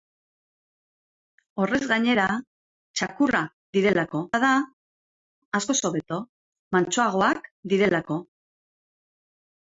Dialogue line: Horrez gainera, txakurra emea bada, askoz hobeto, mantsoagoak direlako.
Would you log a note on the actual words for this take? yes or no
yes